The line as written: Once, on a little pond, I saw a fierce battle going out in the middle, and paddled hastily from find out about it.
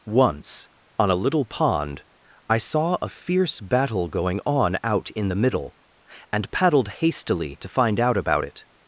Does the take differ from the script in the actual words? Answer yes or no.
yes